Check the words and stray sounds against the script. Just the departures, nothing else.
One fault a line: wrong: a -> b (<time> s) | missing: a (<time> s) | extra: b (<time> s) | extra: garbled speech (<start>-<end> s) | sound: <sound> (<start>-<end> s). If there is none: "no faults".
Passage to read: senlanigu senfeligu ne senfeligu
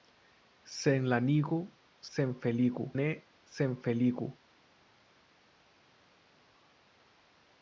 no faults